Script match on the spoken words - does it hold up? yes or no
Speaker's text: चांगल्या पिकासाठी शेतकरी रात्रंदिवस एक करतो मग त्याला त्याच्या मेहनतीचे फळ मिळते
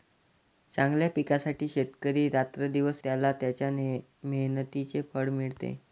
no